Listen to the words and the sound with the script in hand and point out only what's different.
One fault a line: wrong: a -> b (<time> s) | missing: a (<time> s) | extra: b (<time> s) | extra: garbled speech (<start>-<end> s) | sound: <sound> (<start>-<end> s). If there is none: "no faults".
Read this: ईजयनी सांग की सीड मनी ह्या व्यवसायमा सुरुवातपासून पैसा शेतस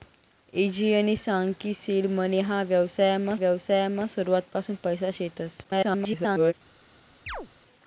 extra: व्यवसायमा (3.4 s)
extra: garbled speech (5.6-6.5 s)
sound: chirp (7.3-7.5 s)